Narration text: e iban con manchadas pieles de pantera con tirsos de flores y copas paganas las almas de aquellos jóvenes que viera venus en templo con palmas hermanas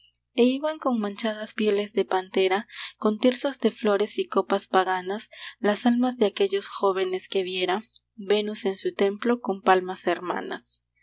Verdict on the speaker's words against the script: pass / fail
fail